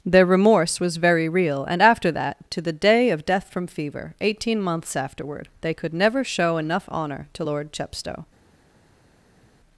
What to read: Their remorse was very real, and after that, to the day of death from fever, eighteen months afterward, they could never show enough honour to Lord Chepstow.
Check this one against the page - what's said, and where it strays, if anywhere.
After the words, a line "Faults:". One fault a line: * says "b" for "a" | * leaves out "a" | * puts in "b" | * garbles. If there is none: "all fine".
Their remorse was very real, and after that, to the day of death from fever, eighteen months afterward, they could never show enough honour to Lord Chepstow.
Faults:
all fine